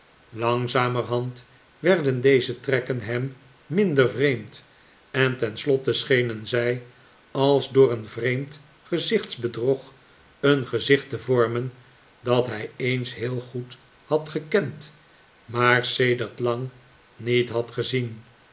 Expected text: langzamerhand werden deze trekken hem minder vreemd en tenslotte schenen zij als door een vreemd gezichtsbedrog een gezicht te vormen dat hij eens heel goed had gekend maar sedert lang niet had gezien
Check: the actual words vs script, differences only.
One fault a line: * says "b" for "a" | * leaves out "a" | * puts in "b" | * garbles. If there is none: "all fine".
all fine